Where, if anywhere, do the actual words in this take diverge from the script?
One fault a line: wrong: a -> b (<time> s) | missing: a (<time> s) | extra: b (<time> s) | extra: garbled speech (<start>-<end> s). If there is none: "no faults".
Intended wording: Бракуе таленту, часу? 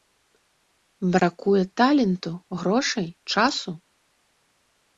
extra: грошай (2.6 s)